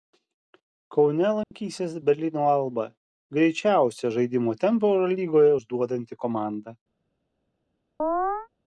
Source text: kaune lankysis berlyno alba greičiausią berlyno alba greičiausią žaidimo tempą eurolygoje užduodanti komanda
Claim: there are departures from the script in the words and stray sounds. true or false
true